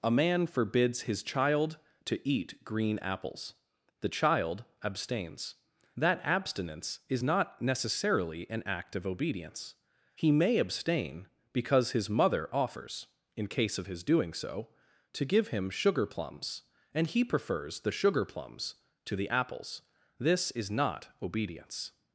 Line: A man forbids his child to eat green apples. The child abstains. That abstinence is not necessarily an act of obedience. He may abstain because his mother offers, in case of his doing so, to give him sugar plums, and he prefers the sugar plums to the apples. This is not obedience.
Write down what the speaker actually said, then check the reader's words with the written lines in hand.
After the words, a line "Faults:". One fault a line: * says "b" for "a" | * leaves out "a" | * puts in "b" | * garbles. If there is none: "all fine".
A man forbids his child to eat green apples. The child abstains. That abstinence is not necessarily an act of obedience. He may abstain because his mother offers, in case of his doing so, to give him sugar plums, and he prefers the sugar plums to the apples. This is not obedience.
Faults:
all fine